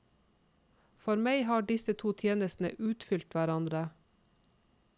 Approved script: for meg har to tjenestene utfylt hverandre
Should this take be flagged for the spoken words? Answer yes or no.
yes